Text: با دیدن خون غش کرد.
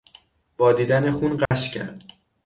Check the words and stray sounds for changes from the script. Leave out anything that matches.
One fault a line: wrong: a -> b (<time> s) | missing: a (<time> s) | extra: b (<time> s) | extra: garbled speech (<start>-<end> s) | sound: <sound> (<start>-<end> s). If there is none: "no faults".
sound: dropout (1.5-1.5 s)